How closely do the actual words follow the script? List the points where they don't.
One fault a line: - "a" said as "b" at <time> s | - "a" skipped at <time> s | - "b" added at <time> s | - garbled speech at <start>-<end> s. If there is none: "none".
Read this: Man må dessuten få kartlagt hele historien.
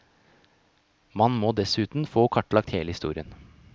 none